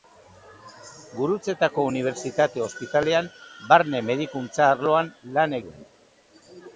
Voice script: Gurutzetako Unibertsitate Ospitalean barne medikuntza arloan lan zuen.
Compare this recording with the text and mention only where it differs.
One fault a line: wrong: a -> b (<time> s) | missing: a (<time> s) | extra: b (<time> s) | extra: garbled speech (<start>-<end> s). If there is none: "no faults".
no faults